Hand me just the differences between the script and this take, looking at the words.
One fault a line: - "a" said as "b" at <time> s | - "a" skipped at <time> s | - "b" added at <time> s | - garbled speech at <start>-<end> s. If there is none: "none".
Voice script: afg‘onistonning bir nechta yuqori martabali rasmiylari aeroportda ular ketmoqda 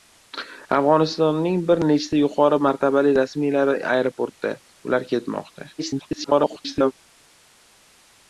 - garbled speech at 5.8-6.9 s